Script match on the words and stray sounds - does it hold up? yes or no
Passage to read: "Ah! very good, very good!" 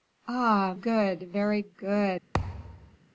no